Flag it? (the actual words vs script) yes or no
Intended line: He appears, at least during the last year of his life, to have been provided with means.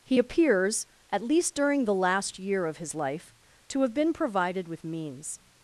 no